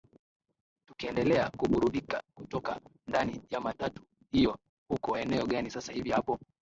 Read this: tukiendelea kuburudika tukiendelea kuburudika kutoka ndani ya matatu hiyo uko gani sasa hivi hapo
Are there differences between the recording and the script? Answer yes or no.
yes